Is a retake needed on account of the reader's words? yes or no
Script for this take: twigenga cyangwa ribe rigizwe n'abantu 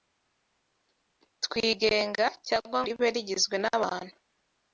no